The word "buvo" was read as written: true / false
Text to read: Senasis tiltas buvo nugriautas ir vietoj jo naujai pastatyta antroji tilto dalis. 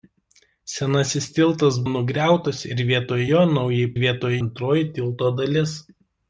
false